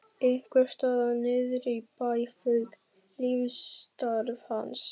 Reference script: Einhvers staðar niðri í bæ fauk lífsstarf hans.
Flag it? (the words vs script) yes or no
no